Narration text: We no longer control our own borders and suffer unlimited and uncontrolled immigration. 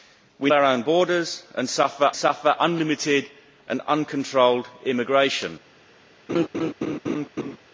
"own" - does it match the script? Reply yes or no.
yes